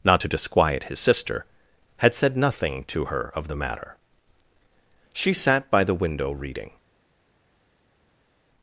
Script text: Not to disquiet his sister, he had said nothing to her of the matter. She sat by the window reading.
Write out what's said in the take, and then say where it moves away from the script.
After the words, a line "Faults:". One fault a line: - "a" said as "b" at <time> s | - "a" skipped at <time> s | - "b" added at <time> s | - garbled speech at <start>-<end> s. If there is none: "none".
Not to disquiet his sister, had said nothing to her of the matter. She sat by the window reading.
Faults:
- "he" skipped at 1.4 s